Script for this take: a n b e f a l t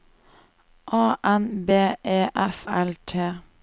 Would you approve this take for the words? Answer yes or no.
no